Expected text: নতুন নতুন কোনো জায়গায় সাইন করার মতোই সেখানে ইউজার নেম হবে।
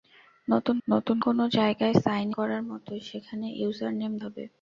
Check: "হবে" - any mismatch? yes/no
no